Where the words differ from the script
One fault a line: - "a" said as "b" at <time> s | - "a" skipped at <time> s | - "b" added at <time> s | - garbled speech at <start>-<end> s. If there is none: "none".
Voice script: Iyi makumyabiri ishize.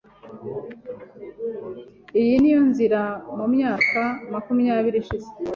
- "niyo nzira mumyaka" added at 2.4 s